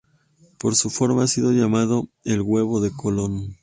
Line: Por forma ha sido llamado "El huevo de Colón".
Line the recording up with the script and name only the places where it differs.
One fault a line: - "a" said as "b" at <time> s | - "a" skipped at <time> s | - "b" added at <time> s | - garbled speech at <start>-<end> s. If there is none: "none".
- "su" added at 0.8 s